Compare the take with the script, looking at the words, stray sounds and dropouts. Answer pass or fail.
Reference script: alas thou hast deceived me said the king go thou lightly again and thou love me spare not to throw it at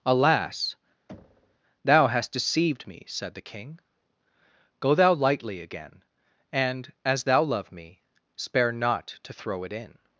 fail